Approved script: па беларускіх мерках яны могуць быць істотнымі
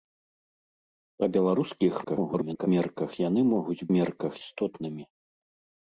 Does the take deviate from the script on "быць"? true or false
true